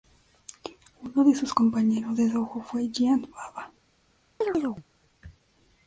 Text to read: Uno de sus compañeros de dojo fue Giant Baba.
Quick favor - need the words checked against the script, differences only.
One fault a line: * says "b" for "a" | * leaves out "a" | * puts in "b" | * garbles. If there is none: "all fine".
all fine